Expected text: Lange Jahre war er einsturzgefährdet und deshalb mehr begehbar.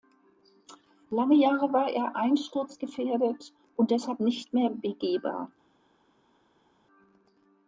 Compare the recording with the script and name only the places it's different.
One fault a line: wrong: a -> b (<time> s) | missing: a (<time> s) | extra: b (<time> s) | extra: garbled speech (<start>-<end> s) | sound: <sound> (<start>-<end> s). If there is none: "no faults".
extra: nicht (4.2 s)